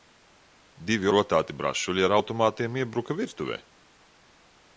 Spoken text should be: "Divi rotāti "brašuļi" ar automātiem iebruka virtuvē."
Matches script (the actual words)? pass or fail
pass